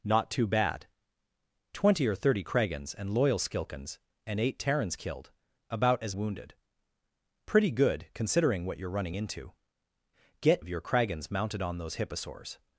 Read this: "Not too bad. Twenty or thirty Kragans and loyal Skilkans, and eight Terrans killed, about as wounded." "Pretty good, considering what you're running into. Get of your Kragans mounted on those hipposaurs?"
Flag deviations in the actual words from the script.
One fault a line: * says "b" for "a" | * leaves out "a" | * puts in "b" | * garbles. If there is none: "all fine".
all fine